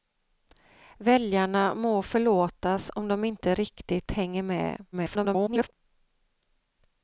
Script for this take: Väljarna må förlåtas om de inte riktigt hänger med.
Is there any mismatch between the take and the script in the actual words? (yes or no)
yes